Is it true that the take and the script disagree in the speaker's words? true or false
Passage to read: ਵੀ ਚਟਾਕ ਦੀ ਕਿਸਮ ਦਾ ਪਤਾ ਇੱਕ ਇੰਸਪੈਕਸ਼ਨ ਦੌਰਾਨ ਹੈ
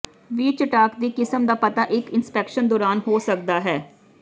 true